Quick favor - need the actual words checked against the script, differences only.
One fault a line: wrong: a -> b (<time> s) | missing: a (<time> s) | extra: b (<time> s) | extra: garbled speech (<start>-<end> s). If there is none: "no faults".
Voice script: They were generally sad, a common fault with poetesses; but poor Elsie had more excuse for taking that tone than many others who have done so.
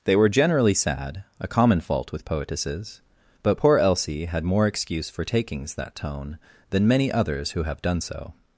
wrong: taking -> takings (5.2 s)